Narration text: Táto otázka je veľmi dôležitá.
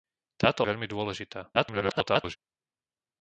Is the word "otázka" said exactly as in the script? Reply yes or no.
no